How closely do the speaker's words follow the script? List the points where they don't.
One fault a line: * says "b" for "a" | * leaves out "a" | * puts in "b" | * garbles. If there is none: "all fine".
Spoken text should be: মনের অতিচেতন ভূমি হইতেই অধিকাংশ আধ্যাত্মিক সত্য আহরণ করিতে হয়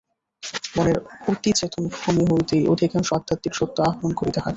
all fine